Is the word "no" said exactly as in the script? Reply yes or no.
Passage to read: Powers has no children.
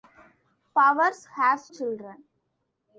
no